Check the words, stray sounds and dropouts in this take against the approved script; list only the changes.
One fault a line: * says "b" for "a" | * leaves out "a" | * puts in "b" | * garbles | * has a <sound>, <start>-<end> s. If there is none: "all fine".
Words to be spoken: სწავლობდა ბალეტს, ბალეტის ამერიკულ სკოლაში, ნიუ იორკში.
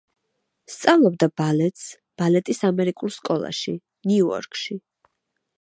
all fine